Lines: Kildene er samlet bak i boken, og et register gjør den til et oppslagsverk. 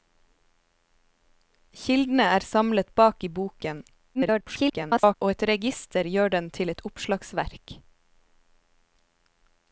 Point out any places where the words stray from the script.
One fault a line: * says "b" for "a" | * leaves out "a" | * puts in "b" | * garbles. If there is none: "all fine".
* garbles